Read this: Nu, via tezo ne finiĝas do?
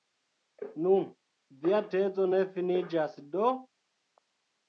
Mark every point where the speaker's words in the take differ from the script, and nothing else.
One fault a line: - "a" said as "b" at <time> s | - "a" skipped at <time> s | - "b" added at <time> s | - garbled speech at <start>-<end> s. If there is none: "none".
none